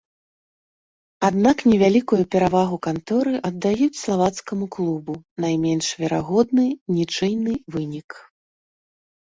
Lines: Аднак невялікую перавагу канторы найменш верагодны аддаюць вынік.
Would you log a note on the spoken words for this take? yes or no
yes